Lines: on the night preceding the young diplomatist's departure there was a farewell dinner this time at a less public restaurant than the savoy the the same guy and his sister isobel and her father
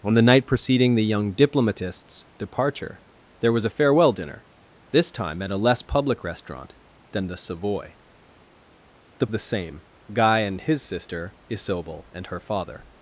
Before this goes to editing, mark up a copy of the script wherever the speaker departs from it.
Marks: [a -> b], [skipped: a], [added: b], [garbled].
on the night preceding the young diplomatist's departure there was a farewell dinner this time at a less public restaurant than the savoy the the same guy and his sister isobel and her father